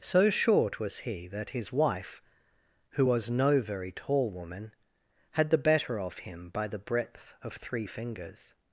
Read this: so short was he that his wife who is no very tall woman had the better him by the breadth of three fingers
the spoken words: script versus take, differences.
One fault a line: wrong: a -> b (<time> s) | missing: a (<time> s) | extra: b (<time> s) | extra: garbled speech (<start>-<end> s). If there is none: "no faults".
wrong: is -> was (3.0 s)
extra: of (6.0 s)